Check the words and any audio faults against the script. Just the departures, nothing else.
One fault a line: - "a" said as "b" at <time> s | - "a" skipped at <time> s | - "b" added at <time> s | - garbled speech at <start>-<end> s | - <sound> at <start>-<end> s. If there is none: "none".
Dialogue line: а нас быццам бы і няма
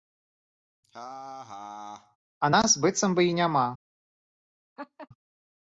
- laugh at 0.8-2.2 s
- laugh at 4.8-5.1 s